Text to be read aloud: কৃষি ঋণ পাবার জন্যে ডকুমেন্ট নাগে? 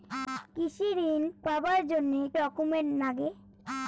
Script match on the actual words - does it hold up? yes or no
yes